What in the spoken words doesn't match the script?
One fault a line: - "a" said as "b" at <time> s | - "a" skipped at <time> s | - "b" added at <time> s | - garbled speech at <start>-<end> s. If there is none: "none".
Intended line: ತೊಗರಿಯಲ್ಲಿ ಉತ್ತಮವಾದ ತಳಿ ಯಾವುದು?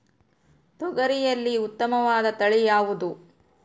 none